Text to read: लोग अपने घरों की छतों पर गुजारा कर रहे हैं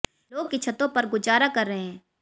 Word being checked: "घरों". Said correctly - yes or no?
no